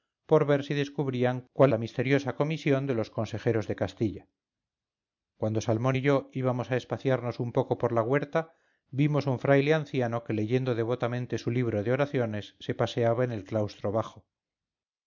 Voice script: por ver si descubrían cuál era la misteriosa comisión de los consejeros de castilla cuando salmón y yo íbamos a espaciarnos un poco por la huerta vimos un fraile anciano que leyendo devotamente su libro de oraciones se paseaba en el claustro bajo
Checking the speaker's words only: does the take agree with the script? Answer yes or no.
no